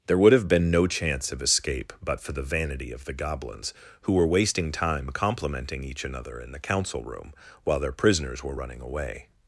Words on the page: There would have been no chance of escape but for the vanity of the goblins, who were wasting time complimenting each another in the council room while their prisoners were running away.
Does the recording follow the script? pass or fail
pass